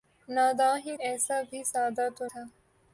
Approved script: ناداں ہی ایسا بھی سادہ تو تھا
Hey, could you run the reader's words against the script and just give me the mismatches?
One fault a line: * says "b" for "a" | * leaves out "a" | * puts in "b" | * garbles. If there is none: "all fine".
all fine